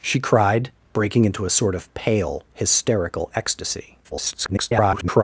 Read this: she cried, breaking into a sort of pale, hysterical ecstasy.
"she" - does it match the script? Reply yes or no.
yes